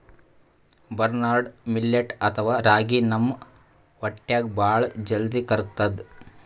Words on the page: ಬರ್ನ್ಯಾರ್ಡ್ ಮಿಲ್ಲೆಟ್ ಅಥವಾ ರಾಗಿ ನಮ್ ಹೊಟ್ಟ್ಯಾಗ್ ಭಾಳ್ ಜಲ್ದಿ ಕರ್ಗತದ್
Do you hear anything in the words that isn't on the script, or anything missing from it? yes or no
no